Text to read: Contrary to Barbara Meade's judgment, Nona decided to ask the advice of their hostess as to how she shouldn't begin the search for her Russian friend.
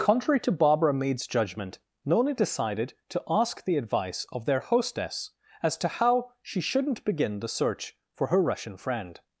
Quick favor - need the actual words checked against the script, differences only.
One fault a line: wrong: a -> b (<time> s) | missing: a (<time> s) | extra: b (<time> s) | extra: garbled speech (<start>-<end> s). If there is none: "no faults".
no faults